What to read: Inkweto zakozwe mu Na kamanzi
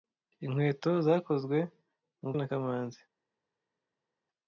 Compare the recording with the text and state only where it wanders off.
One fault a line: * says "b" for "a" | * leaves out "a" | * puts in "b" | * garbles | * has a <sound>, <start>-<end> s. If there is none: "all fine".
all fine